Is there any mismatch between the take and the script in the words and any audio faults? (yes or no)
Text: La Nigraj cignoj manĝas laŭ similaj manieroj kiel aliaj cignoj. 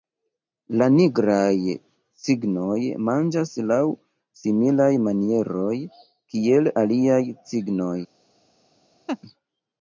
yes